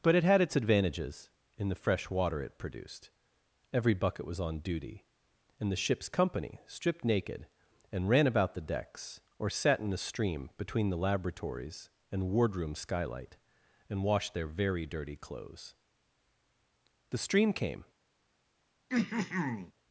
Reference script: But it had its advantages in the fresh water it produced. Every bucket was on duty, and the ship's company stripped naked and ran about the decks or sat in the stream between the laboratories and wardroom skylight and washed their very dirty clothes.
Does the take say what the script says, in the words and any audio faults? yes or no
no